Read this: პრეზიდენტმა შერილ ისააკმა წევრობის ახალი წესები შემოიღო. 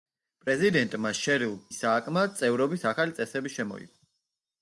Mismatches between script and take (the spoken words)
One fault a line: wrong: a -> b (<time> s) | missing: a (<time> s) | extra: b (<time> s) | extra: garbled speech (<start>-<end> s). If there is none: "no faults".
no faults